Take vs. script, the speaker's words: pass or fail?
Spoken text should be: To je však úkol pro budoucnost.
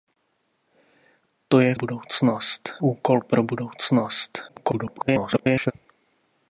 fail